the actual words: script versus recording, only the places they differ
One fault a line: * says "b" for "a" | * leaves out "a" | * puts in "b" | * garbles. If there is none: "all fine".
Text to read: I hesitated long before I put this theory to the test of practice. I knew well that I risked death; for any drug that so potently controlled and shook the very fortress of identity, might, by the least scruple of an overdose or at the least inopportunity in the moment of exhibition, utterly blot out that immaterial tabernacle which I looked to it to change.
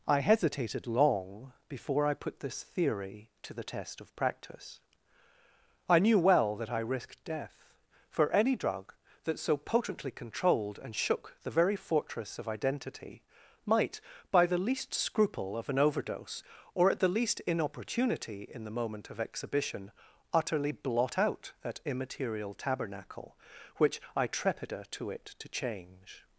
* says "trepida" for "looked"